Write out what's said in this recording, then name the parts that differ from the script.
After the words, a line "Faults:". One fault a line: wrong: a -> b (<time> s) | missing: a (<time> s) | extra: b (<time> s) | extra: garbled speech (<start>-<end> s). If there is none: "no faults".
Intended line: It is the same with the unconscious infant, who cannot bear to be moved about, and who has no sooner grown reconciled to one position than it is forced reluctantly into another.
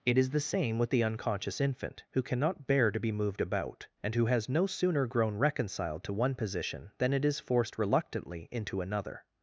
It is the same with the unconscious infant, who cannot bear to be moved about, and who has no sooner grown reconciled to one position than it is forced reluctantly into another.
Faults:
no faults